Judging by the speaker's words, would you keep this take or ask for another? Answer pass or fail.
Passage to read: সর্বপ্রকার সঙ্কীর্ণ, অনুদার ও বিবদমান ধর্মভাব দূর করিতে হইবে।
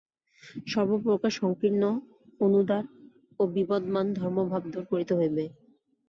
pass